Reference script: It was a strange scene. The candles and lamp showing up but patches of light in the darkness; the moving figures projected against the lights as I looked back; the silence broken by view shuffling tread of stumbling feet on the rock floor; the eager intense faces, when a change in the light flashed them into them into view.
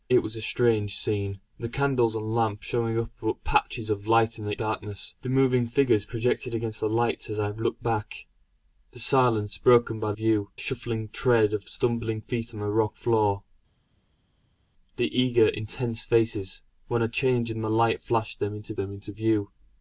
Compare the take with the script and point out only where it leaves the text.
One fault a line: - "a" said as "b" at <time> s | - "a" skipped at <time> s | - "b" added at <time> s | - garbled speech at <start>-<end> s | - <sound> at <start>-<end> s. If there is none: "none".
none